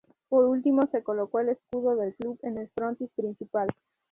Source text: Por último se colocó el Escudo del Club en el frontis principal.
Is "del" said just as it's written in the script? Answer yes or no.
yes